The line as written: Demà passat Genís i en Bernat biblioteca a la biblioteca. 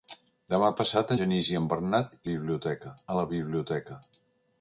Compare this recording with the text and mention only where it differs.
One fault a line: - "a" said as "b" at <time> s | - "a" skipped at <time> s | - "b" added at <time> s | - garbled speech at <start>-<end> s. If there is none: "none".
none